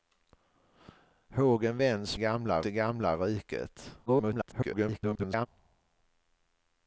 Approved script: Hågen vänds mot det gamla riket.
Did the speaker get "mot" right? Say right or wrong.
wrong